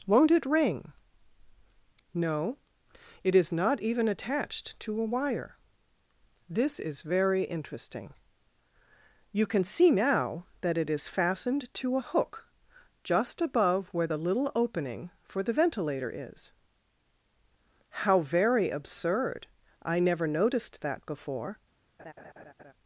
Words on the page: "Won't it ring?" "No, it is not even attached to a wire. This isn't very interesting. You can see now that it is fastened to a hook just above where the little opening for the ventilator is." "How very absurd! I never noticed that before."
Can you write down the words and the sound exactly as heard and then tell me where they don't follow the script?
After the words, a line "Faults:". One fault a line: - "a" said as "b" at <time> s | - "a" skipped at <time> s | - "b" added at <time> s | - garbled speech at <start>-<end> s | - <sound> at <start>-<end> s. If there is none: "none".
"Won't it ring?" "No, it is not even attached to a wire. This is very interesting. You can see now that it is fastened to a hook just above where the little opening for the ventilator is." "How very absurd! I never noticed that before."
Faults:
- "isn't" said as "is" at 6.8 s
- laugh at 22.0-22.7 s